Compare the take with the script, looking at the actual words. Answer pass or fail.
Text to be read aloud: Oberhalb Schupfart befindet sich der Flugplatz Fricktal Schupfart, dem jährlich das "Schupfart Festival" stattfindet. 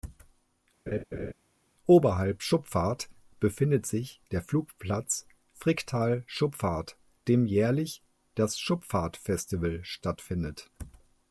pass